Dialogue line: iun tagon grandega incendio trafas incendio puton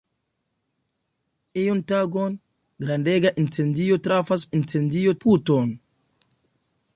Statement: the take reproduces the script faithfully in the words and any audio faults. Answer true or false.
true